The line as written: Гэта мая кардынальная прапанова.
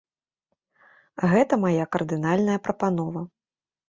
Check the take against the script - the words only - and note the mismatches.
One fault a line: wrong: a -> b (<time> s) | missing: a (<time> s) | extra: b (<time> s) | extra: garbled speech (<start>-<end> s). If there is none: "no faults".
no faults